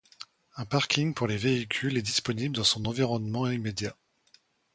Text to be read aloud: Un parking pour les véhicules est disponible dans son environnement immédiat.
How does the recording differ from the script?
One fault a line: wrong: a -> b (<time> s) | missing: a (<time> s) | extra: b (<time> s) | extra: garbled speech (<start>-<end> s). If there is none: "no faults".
no faults